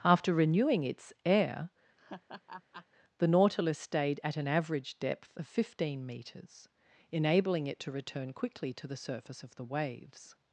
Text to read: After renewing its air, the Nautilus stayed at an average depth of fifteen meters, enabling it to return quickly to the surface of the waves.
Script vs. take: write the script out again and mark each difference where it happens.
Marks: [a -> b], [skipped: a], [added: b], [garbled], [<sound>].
After renewing its air, [laugh] the Nautilus stayed at an average depth of fifteen meters, enabling it to return quickly to the surface of the waves.